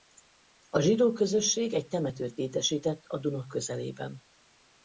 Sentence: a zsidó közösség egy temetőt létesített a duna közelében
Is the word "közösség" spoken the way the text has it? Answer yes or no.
yes